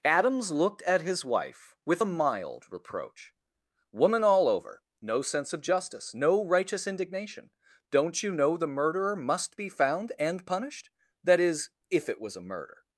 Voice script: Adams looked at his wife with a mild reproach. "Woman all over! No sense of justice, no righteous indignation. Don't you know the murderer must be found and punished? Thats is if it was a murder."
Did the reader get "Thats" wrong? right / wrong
wrong